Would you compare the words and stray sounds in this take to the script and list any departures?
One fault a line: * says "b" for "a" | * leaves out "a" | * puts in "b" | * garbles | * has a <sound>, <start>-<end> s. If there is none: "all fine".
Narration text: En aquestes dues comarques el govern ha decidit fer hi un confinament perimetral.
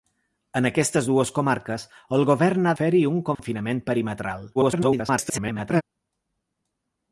* leaves out "decidit"
* has a dropout, 3.3-3.4 s
* garbles